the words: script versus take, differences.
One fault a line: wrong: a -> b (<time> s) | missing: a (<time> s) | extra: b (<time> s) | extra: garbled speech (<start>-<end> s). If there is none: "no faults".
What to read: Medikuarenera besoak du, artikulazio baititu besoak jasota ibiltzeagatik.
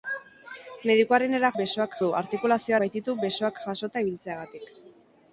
no faults